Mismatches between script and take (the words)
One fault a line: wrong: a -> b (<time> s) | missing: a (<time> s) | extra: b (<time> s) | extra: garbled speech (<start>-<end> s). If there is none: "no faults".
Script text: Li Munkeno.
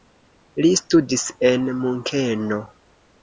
extra: studis en (0.8 s)